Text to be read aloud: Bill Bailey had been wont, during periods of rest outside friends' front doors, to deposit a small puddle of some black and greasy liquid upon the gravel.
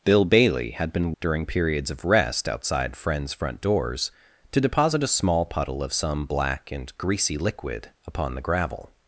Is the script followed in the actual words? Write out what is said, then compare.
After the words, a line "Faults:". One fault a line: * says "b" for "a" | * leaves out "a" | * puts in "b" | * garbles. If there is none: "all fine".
Bill Bailey had been during periods of rest outside friends' front doors, to deposit a small puddle of some black and greasy liquid upon the gravel.
Faults:
* leaves out "wont"